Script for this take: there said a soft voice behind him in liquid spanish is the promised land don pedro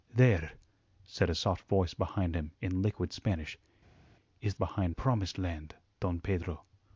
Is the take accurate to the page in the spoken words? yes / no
no